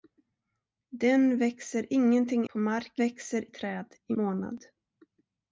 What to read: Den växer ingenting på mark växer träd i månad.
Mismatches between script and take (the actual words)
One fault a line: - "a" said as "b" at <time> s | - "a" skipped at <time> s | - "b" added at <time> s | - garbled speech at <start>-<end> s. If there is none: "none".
none